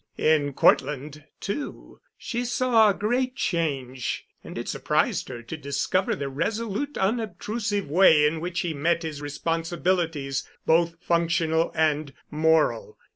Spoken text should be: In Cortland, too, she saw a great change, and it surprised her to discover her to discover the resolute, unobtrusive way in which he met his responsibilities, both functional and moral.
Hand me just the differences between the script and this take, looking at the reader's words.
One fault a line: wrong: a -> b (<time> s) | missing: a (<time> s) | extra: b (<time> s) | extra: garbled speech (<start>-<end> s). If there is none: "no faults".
missing: her to discover (6.2 s)